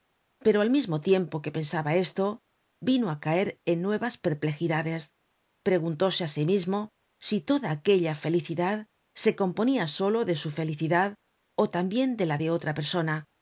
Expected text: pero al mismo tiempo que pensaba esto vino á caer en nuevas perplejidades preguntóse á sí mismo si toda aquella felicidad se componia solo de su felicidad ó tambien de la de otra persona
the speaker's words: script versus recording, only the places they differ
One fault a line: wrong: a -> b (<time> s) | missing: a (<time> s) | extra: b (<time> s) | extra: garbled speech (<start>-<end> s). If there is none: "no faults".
no faults